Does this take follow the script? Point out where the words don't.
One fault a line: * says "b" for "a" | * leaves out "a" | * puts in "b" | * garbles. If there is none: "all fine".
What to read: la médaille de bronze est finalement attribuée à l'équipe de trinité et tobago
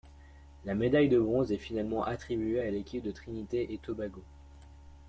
all fine